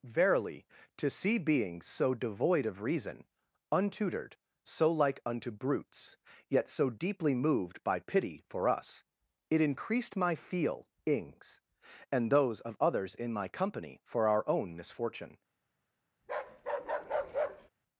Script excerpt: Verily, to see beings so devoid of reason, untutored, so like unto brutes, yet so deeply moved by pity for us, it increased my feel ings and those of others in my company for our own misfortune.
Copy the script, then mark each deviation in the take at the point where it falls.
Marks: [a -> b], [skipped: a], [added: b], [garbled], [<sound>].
Verily, to see beings so devoid of reason, untutored, so like unto brutes, yet so deeply moved by pity for us, it increased my feel ings and those of others in my company for our own misfortune. [bark]